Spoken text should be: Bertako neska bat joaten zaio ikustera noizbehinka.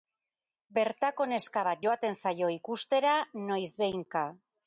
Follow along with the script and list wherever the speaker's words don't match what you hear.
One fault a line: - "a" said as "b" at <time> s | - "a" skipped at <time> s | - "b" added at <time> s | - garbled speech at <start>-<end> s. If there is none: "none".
none